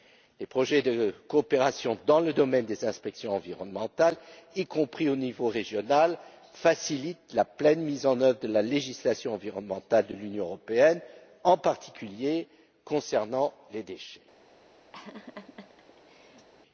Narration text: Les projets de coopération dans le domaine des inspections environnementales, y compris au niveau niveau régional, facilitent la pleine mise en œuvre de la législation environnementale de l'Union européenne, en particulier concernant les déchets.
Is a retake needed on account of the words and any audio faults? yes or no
yes